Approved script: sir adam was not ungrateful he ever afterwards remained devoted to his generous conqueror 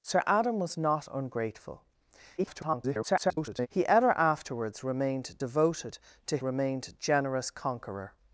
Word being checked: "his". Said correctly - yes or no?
no